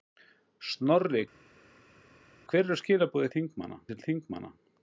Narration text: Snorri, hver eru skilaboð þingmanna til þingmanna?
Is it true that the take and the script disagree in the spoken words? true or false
false